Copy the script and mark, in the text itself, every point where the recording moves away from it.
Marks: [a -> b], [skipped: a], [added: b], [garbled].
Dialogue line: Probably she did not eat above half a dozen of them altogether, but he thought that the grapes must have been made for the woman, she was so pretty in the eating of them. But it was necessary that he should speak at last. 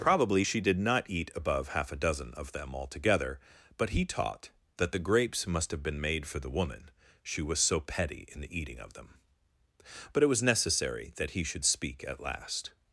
Probably she did not eat above half a dozen of them altogether, but he [thought -> taught] that the grapes must have been made for the woman, she was so [pretty -> petty] in the eating of them. But it was necessary that he should speak at last.